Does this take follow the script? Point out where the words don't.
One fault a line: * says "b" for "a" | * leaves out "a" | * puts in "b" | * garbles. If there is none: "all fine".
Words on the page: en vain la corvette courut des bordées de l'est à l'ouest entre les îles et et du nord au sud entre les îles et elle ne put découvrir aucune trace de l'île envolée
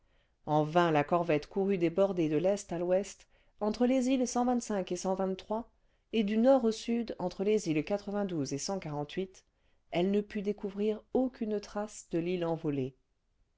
all fine